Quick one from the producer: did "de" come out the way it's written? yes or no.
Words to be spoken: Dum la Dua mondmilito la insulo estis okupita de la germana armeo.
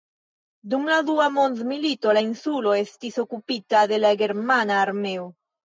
yes